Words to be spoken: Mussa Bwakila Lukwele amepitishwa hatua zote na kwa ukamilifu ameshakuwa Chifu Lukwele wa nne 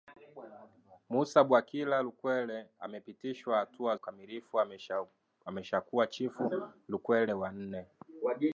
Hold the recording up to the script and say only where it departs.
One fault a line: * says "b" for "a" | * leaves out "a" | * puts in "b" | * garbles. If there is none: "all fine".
* leaves out "zote na kwa"